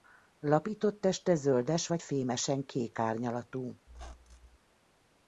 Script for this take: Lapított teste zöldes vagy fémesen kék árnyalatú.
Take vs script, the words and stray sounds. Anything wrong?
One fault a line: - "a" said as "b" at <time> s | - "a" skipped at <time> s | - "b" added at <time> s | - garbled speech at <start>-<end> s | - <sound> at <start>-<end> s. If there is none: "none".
- squeak at 3.9-4.6 s